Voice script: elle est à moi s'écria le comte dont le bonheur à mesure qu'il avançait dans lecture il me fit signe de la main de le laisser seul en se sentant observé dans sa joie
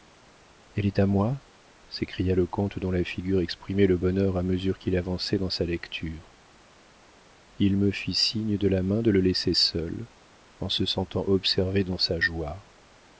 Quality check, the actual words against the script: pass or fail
fail